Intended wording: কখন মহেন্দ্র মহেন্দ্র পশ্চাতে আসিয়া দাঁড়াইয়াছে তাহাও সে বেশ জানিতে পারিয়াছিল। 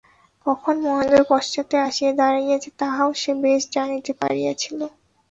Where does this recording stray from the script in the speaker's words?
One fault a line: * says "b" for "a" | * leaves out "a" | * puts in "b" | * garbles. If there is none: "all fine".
* leaves out "মহেন্দ্র"